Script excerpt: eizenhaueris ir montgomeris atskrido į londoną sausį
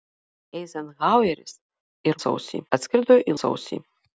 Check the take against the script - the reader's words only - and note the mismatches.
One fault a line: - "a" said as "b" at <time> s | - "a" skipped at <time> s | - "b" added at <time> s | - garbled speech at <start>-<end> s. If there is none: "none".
- "montgomeris" said as "sausį" at 2.2 s
- "londoną" skipped at 3.4 s